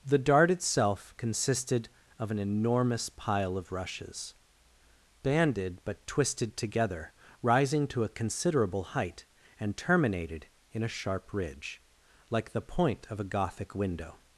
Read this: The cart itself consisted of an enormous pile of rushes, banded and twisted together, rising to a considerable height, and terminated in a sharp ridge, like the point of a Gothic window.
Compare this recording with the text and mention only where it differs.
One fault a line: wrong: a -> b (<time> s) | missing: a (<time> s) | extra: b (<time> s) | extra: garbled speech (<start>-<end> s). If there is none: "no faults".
wrong: cart -> dart (0.2 s)
wrong: and -> but (5.8 s)